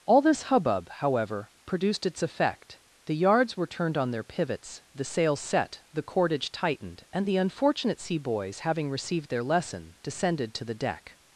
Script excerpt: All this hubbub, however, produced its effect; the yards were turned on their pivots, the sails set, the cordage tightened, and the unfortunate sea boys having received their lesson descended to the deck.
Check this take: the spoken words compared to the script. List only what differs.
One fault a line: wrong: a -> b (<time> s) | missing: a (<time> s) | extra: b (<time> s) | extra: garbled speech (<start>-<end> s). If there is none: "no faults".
no faults